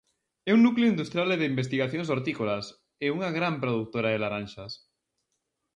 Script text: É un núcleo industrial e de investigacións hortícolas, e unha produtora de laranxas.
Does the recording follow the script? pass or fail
fail